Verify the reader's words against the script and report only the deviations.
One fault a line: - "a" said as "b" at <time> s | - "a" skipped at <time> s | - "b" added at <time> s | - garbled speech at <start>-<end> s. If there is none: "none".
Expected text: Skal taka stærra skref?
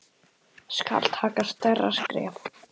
none